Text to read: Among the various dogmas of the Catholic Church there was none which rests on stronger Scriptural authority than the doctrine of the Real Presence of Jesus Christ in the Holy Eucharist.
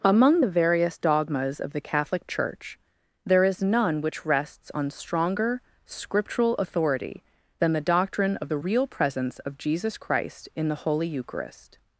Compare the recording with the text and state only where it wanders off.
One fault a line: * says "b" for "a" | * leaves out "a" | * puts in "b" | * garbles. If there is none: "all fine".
* says "is" for "was"